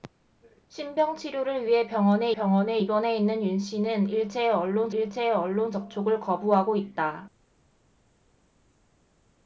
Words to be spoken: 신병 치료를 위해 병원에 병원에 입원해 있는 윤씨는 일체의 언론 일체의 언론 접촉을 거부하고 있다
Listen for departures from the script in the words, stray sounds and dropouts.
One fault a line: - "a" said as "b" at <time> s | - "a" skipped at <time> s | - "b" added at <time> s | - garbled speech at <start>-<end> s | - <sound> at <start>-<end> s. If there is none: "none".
none